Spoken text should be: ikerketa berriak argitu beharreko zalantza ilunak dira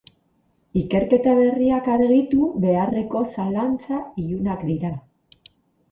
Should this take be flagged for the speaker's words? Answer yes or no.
no